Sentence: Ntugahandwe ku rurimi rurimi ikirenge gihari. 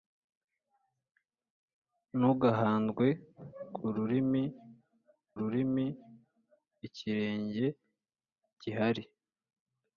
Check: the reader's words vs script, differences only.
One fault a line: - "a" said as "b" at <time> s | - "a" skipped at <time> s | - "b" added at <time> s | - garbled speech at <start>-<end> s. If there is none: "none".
none